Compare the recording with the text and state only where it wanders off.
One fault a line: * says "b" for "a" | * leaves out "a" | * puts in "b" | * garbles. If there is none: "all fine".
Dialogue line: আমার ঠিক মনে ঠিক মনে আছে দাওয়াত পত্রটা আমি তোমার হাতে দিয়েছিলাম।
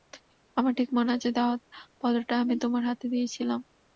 * leaves out "ঠিক মনে"